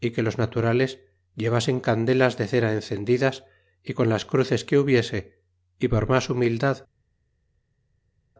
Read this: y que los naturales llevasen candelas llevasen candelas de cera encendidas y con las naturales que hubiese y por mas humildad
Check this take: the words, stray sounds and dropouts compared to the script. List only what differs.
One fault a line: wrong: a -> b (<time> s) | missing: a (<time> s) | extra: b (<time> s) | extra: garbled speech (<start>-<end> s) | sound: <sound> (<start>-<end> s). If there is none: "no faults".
missing: llevasen candelas (2.4 s)
wrong: naturales -> cruces (4.3 s)